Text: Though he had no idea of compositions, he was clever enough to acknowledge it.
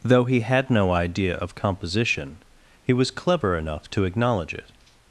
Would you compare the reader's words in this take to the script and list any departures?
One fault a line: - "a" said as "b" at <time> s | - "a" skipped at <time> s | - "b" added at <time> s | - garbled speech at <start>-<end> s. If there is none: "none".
- "compositions" said as "composition" at 1.5 s